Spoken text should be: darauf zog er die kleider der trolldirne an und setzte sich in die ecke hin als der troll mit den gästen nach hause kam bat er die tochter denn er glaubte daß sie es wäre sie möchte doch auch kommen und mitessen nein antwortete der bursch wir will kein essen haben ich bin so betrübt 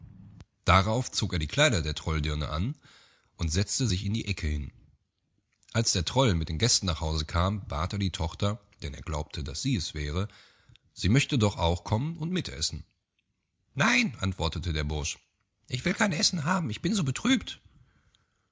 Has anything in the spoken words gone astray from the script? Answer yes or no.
yes